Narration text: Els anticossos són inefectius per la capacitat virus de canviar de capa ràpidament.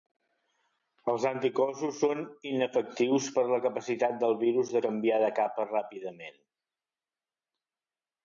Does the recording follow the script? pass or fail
fail